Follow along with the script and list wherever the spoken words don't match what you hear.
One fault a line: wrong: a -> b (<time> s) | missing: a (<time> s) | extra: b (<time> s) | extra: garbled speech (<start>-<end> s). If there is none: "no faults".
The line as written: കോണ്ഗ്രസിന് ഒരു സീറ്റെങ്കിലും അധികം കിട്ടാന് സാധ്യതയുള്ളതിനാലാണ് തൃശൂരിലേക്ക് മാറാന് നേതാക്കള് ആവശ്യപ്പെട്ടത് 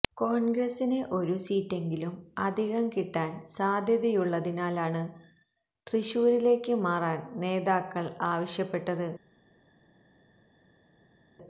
no faults